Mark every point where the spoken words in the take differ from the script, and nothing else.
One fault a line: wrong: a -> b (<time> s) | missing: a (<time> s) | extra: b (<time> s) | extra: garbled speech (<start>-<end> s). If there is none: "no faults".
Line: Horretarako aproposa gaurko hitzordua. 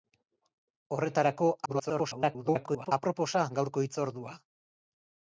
extra: garbled speech (1.7-2.9 s)